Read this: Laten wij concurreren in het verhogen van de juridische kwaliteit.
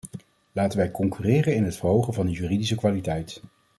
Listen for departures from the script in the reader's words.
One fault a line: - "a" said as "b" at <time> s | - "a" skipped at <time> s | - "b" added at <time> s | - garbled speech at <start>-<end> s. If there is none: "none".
none